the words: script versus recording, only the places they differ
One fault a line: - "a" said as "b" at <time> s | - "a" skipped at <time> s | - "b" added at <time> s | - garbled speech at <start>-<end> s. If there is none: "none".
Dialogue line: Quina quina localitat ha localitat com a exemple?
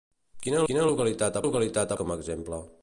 none